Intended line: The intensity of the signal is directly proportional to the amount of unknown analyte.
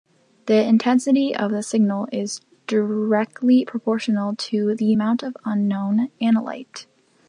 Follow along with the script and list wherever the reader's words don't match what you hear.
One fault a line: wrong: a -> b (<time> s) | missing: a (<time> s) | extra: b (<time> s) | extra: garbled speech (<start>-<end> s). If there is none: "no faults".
no faults